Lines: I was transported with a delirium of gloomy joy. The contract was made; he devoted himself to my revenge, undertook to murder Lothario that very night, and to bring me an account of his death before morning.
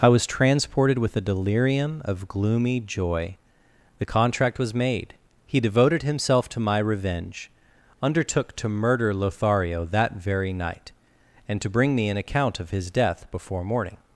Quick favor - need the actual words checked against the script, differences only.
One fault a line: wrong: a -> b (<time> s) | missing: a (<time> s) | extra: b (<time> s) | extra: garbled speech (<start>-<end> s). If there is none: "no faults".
no faults